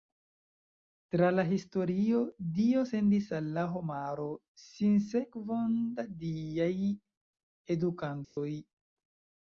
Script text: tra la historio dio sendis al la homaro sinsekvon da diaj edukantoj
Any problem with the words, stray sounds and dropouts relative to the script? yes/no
yes